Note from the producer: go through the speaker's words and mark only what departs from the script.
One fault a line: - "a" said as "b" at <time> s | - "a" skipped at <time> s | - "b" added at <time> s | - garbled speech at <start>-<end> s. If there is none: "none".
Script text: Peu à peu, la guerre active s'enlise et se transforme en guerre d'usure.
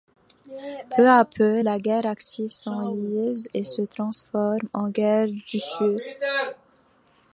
none